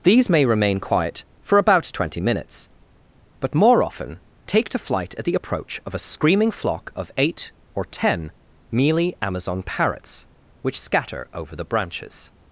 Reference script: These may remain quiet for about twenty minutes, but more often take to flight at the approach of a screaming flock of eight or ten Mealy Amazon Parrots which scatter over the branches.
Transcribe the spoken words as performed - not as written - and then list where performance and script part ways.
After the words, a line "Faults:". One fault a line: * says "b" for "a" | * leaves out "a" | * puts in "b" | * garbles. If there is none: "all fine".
These may remain quiet for about twenty minutes, but more often take to flight at the approach of a screaming flock of eight or ten Mealy Amazon Parrots which scatter over the branches.
Faults:
all fine